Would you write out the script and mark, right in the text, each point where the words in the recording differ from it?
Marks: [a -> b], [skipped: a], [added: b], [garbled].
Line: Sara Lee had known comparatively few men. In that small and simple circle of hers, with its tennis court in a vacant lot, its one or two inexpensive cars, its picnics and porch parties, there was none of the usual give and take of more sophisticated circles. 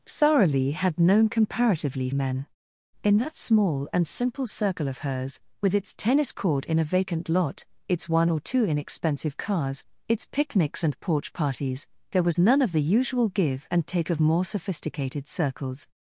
Sara Lee had known comparatively [skipped: few] men. In that small and simple circle of hers, with its tennis court in a vacant lot, its one or two inexpensive cars, its picnics and porch parties, there was none of the usual give and take of more sophisticated circles.